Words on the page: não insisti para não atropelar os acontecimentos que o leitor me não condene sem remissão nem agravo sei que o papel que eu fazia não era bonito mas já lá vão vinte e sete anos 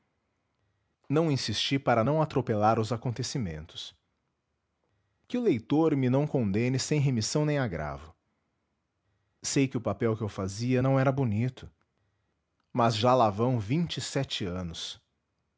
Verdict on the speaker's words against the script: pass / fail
pass